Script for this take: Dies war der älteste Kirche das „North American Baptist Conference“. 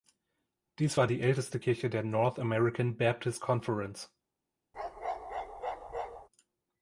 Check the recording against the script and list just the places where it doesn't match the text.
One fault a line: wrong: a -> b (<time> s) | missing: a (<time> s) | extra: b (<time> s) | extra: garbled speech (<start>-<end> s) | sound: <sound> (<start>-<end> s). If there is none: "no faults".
wrong: der -> die (1.1 s)
wrong: das -> der (1.9 s)
sound: bark (4.7-6.3 s)